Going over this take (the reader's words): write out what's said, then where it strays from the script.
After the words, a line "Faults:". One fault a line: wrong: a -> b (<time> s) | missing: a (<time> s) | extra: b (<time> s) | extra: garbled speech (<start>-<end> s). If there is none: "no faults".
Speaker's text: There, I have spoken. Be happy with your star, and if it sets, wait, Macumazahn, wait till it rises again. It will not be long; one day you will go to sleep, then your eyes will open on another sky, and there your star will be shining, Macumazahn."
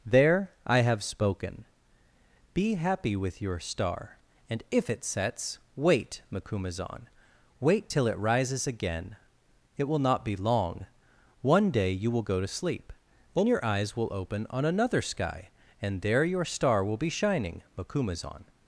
There, I have spoken. Be happy with your star, and if it sets, wait, Macumazahn, wait till it rises again. It will not be long; one day you will go to sleep, then your eyes will open on another sky, and there your star will be shining, Macumazahn."
Faults:
no faults